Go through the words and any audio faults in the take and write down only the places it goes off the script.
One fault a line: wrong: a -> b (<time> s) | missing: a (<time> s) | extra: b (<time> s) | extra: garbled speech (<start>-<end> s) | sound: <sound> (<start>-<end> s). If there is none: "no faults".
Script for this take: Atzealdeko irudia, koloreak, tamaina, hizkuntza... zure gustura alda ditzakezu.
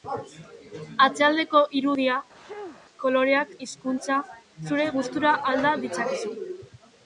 sound: sneeze (2.4-2.8 s)
missing: tamaina (3.5 s)